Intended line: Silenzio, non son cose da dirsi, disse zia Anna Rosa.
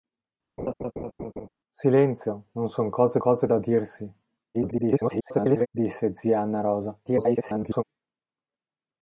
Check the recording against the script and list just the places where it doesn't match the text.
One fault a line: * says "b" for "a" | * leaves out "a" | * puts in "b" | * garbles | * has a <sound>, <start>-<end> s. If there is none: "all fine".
* has a laugh, 0.6-1.5 s
* puts in "cose"
* garbles
* garbles